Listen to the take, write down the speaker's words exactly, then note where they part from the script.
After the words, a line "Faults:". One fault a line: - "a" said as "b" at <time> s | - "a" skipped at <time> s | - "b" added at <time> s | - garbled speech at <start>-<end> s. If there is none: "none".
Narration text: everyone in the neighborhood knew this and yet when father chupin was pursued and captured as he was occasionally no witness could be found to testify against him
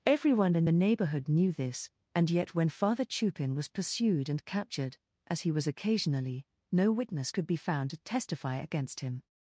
everyone in the neighborhood knew this and yet when father chupin was pursued and captured as he was occasionally no witness could be found to testify against him
Faults:
none